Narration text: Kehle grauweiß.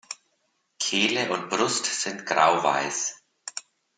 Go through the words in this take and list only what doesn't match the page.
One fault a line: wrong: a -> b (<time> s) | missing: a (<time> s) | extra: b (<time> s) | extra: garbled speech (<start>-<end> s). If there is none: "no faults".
extra: und Brust sind (1.3 s)